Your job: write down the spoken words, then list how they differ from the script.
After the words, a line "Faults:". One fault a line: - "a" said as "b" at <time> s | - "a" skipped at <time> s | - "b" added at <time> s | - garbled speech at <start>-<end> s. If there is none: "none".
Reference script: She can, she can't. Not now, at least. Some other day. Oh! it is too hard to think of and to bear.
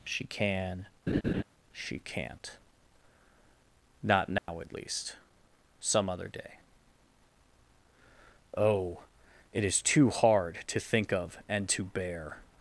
She can, she can't. Not now, at least. Some other day. Oh! it is too hard to think of and to bear.
Faults:
none